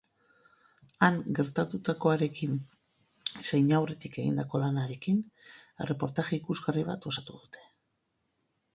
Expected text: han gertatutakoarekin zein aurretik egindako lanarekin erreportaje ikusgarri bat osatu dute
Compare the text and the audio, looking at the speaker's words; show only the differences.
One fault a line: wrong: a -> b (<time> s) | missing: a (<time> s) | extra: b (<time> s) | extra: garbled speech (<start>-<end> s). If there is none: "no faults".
no faults